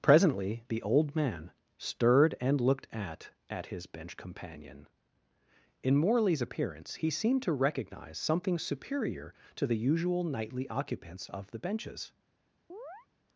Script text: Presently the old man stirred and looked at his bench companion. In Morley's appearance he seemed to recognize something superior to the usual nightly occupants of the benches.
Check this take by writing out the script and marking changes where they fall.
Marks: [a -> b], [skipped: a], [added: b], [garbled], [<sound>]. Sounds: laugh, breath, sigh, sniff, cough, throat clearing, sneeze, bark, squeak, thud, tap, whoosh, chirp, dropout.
Presently the old man stirred and looked at [added: at] his bench companion. In Morley's appearance he seemed to recognize something superior to the usual nightly occupants of the benches. [chirp]